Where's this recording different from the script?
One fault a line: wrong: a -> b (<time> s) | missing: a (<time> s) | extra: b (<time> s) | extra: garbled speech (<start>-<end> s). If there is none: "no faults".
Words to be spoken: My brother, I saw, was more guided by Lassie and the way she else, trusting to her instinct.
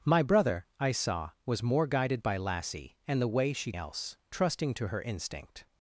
no faults